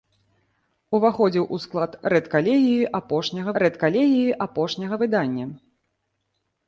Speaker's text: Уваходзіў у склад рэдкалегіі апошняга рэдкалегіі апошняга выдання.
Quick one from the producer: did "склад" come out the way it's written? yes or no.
yes